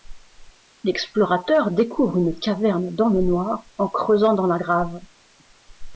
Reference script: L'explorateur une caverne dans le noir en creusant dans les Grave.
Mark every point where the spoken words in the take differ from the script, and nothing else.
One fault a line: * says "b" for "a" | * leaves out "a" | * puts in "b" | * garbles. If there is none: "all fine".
* puts in "découvre"
* says "la" for "les"